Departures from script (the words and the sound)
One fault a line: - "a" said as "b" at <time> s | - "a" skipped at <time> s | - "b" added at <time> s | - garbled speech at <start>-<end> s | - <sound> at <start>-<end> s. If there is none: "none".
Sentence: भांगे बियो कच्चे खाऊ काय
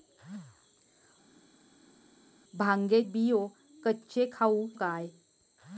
none